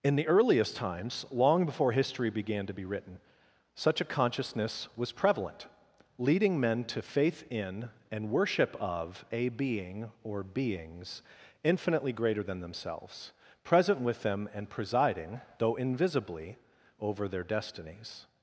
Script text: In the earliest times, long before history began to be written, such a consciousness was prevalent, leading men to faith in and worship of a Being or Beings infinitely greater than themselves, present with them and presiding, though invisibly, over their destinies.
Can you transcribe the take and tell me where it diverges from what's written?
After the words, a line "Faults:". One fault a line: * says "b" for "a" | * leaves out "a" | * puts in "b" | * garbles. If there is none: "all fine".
In the earliest times, long before history began to be written, such a consciousness was prevalent, leading men to faith in and worship of a Being or Beings infinitely greater than themselves, present with them and presiding, though invisibly, over their destinies.
Faults:
all fine